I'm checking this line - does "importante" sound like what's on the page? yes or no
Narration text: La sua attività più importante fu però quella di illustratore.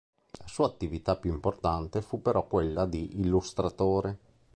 yes